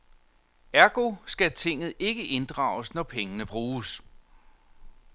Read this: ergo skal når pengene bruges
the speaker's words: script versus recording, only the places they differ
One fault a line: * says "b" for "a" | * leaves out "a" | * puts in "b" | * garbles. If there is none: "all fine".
* puts in "tinget ikke inddrages"